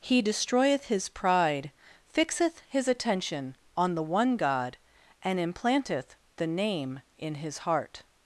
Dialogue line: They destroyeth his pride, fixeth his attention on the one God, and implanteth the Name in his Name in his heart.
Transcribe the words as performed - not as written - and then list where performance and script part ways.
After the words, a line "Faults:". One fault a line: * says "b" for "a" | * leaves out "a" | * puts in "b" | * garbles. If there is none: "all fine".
He destroyeth his pride, fixeth his attention on the one God, and implanteth the Name in his heart.
Faults:
* says "He" for "They"
* leaves out "Name in his"